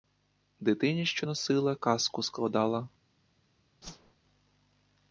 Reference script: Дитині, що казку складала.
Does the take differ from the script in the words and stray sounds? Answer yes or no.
yes